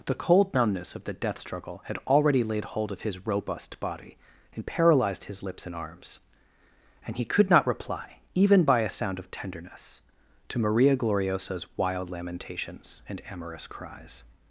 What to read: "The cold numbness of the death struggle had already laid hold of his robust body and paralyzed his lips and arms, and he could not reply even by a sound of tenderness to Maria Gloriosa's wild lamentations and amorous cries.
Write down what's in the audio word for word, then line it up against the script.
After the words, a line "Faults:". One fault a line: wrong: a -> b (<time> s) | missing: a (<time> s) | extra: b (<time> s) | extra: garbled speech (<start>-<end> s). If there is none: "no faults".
"The cold numbness of the death struggle had already laid hold of his robust body and paralyzed his lips and arms, and he could not reply even by a sound of tenderness to Maria Gloriosa's wild lamentations and amorous cries.
Faults:
no faults